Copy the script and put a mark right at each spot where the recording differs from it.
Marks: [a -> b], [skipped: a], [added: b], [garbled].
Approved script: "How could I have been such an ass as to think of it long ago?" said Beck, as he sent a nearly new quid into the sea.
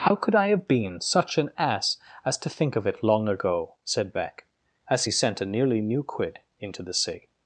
"How could I have been such an ass as to think of it long ago?" said Beck, as he sent a nearly new quid into the sea.